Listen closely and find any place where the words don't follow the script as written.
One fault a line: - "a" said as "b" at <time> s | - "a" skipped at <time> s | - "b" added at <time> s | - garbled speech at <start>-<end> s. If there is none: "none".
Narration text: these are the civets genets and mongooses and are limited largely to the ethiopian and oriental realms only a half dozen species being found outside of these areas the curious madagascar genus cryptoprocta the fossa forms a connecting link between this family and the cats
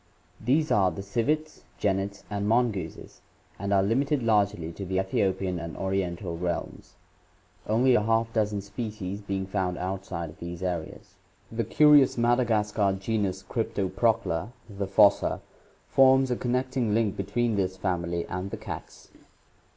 none